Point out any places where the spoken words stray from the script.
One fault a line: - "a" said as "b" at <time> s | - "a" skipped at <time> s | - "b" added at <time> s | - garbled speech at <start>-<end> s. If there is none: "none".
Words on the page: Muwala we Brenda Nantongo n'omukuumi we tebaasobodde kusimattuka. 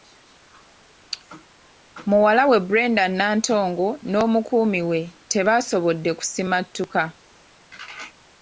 none